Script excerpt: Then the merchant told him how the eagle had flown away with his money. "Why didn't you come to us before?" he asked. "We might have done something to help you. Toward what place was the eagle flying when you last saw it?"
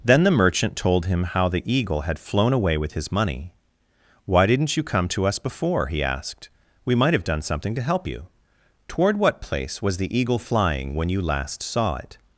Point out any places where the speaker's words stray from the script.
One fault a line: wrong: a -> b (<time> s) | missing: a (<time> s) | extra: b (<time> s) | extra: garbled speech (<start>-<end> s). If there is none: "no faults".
no faults